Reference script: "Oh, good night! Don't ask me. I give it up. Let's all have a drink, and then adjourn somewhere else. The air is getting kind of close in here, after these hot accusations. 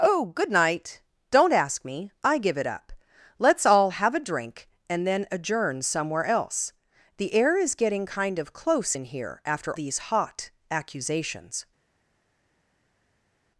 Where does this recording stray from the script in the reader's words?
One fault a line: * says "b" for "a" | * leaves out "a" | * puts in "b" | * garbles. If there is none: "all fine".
all fine